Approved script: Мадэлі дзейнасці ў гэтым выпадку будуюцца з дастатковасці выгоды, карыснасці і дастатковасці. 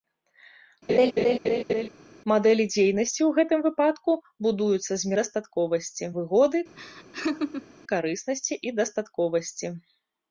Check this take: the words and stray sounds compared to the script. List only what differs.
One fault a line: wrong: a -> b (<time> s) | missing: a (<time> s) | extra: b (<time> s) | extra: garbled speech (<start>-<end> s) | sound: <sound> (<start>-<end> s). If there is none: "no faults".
sound: laugh (0.9-1.9 s)
sound: laugh (6.8-7.7 s)